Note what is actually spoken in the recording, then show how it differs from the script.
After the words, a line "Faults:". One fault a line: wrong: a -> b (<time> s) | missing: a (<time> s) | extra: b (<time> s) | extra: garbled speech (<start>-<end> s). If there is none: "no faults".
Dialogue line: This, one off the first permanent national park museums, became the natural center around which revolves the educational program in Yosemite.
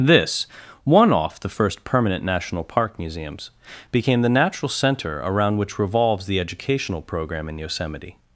This, one off the first permanent national park museums, became the natural center around which revolves the educational program in Yosemite.
Faults:
no faults